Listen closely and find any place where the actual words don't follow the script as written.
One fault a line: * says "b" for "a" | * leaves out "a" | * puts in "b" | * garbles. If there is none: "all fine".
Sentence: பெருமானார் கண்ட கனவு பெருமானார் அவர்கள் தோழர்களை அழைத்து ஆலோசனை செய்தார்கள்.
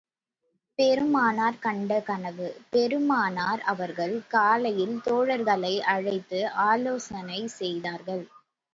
* puts in "காலையில்"